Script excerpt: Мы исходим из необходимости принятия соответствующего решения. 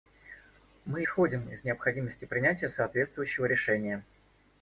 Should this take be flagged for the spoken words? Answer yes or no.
no